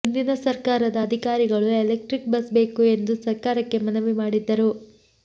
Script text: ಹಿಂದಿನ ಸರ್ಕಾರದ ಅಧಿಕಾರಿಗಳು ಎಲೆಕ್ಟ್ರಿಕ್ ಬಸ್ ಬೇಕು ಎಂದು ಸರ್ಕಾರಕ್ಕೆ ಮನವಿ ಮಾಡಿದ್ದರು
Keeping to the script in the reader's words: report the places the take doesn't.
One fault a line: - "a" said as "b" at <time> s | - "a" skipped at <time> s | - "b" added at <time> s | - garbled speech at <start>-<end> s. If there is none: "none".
none